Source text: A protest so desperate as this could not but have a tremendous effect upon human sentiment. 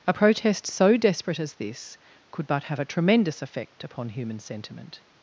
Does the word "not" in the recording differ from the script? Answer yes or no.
yes